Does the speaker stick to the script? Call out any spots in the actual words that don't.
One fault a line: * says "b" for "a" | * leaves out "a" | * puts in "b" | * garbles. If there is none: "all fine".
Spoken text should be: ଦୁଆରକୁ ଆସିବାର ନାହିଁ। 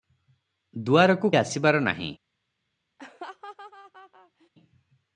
all fine